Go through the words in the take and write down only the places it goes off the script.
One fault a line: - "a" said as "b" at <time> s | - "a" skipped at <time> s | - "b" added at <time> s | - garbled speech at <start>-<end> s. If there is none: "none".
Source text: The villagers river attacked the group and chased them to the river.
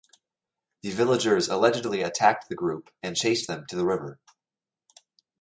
- "river" said as "allegedly" at 1.5 s